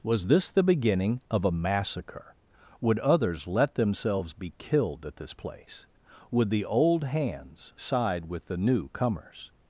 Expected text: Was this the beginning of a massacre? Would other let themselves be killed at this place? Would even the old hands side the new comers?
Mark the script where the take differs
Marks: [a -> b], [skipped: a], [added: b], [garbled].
Was this the beginning of a massacre? Would [other -> others] let themselves be killed at this place? Would [skipped: even] the old hands side [added: with] the new comers?